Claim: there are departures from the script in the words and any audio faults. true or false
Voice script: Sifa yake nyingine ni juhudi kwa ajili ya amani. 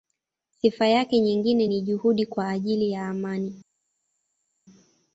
false